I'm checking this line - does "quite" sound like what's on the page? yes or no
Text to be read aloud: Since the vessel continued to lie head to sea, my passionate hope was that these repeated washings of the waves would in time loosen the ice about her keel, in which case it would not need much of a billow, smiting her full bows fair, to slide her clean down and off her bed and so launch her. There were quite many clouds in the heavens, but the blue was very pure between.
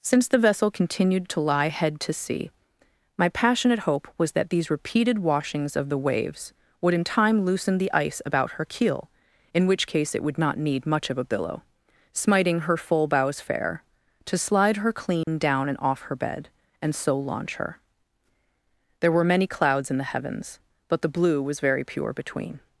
no